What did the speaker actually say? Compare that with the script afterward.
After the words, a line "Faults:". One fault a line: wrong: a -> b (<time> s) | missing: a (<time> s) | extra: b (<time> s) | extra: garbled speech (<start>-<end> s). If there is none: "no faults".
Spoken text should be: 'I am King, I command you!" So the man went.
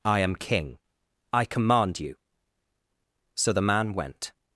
'I am King, I command you!" So the man went.
Faults:
no faults